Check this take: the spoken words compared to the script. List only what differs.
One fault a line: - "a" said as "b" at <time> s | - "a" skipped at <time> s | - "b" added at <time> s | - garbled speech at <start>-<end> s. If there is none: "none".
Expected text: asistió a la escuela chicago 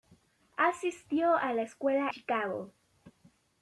none